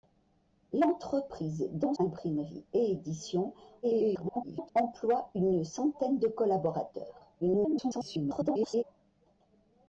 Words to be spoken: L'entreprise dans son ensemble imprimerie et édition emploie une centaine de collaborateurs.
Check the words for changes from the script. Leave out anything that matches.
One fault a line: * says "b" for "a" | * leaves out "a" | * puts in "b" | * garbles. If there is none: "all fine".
* leaves out "son ensemble"
* garbles
* garbles